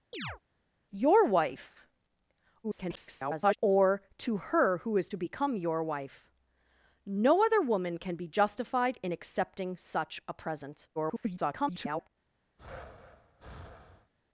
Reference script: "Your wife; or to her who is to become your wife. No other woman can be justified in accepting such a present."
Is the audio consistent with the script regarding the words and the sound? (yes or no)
no